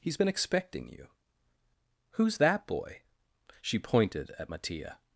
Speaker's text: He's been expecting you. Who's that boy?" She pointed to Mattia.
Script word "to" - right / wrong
wrong